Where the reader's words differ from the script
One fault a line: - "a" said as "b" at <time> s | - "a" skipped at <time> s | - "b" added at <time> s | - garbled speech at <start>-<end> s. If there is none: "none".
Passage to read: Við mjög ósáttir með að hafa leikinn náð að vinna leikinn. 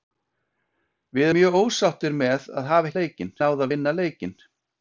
none